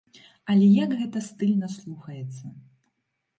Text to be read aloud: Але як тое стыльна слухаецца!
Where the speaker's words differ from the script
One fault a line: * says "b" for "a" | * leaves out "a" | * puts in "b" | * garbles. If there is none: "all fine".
* says "гэта" for "тое"